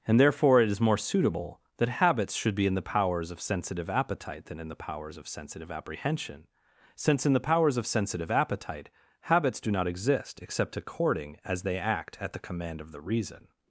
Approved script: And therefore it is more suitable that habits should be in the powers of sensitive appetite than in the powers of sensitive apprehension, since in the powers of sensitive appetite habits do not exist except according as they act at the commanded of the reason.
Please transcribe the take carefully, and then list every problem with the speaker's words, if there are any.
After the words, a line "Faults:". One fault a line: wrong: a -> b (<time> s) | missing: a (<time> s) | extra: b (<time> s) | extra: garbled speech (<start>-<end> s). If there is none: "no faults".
And therefore it is more suitable that habits should be in the powers of sensitive appetite than in the powers of sensitive apprehension, since in the powers of sensitive appetite habits do not exist except according as they act at the command of the reason.
Faults:
wrong: commanded -> command (12.4 s)